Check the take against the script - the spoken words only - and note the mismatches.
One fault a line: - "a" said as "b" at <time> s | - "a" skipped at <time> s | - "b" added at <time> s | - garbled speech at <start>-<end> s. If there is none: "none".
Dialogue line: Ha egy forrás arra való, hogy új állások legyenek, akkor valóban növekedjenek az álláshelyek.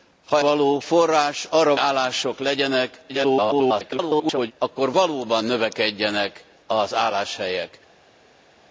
- "egy" said as "való" at 0.4 s
- "való hogy új" skipped at 1.7 s
- garbled speech at 3.1-4.5 s